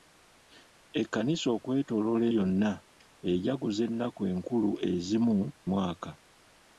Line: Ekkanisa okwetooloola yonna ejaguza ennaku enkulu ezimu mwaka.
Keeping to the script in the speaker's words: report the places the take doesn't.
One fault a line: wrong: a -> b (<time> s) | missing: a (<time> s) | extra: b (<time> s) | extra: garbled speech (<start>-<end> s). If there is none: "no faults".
no faults